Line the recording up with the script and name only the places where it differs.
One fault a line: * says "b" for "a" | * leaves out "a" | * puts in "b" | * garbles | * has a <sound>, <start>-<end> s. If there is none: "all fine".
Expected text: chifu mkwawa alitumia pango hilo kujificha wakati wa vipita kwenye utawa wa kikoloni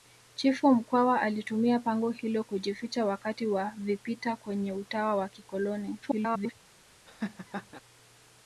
* garbles
* has a laugh, 7.1-7.8 s